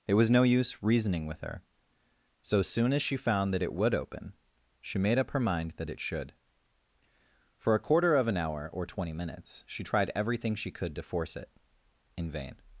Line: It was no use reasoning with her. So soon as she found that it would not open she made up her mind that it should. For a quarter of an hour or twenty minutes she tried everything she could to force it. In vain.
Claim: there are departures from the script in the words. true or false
true